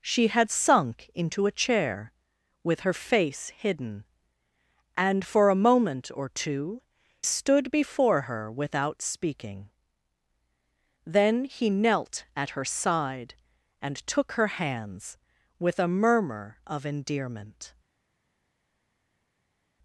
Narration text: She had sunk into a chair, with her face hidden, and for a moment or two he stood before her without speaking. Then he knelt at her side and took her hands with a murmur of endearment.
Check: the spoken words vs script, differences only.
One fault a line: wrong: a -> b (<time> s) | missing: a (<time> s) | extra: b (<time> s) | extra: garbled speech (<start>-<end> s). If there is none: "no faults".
missing: he (6.8 s)